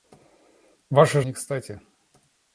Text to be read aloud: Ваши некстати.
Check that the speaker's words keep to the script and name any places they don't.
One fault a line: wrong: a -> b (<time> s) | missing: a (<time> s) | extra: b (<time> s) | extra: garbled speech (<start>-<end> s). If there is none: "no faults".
no faults